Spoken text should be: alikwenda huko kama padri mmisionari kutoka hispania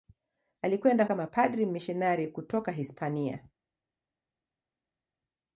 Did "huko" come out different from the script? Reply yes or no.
yes